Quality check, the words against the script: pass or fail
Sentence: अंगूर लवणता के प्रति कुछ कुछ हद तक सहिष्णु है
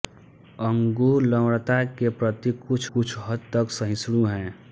pass